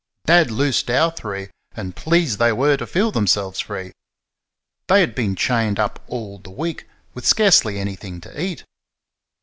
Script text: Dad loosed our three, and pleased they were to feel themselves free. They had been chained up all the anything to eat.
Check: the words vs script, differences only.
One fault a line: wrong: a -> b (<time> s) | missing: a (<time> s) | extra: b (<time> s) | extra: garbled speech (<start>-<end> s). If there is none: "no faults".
extra: week with scarcely (6.5 s)